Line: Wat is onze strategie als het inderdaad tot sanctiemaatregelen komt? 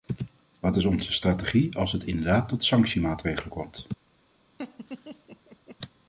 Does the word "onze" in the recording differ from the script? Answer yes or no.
no